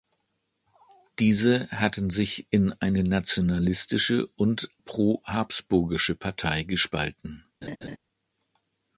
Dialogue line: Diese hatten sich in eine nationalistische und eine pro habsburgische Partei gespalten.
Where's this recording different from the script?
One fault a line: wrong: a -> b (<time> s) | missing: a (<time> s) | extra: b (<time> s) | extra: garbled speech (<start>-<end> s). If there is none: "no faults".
missing: eine (4.7 s)